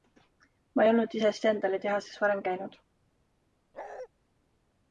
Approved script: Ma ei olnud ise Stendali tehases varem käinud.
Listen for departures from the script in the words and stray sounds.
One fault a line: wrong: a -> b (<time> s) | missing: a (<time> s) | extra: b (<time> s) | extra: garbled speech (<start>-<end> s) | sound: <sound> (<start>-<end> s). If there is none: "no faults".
sound: bark (3.7-4.1 s)